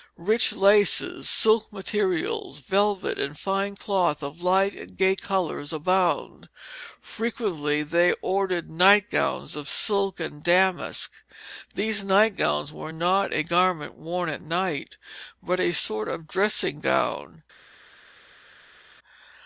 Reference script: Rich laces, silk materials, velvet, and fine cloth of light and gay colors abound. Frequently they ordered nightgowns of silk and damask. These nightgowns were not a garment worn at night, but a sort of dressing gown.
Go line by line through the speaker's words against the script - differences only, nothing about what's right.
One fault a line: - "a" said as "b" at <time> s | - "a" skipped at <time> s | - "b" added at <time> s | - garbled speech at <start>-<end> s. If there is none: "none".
none